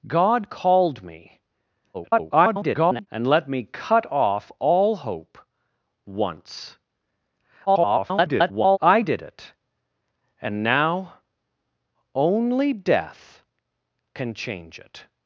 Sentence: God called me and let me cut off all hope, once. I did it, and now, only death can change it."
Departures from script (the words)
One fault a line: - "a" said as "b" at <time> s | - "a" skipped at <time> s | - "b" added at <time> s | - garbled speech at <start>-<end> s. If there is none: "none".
- garbled speech at 1.9-3.1 s
- garbled speech at 7.7-8.8 s